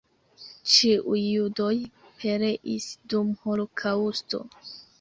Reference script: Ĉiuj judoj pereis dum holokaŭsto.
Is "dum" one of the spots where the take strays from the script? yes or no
no